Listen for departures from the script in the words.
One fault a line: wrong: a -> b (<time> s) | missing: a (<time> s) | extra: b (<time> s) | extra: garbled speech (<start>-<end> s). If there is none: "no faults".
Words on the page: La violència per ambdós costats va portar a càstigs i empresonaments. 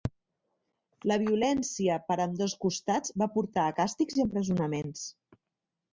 no faults